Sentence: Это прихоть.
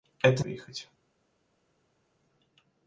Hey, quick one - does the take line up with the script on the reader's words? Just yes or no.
yes